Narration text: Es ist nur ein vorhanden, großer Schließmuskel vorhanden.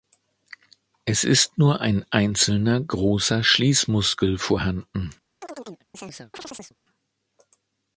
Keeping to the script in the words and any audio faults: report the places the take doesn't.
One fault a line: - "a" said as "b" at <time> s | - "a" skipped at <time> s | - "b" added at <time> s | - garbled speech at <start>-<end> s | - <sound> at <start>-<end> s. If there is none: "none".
- "vorhanden" said as "einzelner" at 2.1 s
- chirp at 5.4-6.8 s